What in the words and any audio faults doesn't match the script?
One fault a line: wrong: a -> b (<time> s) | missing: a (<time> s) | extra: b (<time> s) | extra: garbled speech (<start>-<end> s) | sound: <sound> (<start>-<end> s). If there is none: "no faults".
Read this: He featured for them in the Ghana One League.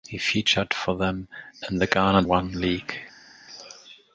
no faults